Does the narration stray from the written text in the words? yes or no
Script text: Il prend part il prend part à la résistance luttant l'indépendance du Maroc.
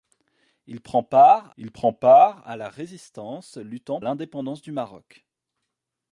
no